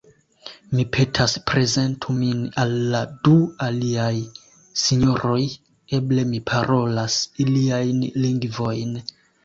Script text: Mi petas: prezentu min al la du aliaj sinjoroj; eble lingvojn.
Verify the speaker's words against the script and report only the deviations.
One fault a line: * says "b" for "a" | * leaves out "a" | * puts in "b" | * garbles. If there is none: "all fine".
* puts in "mi parolas iliajn"